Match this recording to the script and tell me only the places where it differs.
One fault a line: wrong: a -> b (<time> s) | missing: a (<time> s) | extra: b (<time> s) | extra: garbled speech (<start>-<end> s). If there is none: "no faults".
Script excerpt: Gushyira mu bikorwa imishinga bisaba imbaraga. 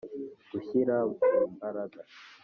missing: bikorwa imishinga bisaba (1.4 s)